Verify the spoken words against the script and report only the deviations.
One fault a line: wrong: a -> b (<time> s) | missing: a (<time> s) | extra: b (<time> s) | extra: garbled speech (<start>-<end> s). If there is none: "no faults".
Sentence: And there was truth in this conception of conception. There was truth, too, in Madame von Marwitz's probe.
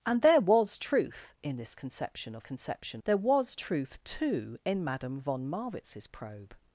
no faults